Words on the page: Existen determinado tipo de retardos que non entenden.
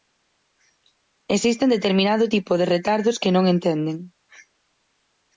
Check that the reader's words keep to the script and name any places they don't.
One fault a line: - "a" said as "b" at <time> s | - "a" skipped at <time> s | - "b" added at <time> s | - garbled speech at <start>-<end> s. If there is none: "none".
none